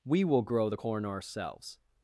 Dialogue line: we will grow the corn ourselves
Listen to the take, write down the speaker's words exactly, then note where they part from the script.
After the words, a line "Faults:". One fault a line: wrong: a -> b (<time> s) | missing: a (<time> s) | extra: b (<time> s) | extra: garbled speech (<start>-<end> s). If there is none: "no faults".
we will grow the corn ourselves
Faults:
no faults